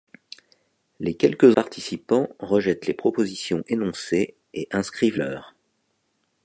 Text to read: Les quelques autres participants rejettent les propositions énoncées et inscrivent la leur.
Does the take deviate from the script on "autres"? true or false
true